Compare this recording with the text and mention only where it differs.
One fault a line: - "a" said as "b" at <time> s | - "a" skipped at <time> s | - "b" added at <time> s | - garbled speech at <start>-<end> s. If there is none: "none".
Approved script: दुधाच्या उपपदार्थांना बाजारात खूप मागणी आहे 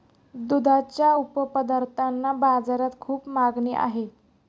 none